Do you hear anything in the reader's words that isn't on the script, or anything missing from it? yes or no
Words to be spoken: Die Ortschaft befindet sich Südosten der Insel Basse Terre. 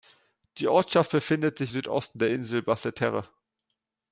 no